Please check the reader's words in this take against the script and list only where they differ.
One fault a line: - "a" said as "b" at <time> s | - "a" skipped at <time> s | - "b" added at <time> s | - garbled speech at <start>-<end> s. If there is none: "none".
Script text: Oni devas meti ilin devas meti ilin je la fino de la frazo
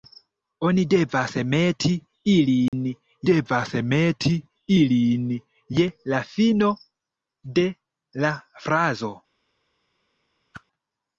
none